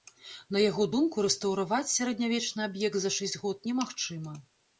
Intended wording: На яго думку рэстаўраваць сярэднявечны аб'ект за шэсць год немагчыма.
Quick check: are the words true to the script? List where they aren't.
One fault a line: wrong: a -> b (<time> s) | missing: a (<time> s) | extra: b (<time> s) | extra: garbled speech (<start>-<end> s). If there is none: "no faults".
no faults